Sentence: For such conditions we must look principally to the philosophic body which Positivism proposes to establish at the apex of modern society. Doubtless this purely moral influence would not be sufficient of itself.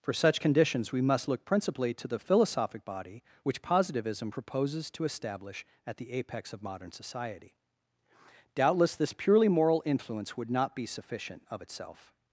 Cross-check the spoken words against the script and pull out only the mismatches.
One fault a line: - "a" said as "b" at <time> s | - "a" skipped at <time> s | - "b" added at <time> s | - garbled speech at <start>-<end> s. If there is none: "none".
none